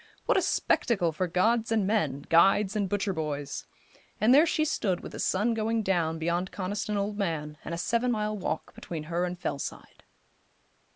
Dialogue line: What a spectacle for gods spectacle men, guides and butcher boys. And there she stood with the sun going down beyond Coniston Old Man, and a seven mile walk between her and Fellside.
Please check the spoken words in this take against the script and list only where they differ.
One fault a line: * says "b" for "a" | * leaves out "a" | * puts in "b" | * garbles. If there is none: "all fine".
* says "and" for "spectacle"